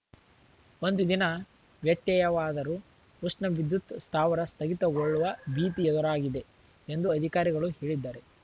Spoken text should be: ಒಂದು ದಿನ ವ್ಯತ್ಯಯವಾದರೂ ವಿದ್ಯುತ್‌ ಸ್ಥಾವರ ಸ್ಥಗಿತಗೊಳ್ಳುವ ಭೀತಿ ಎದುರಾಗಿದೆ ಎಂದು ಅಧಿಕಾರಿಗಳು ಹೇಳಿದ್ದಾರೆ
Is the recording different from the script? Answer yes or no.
yes